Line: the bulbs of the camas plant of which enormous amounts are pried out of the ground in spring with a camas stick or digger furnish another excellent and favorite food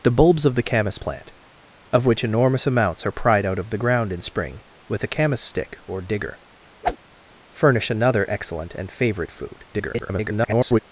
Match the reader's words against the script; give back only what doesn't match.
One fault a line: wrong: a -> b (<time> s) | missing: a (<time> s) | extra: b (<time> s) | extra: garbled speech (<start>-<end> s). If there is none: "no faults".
extra: garbled speech (9.7-10.8 s)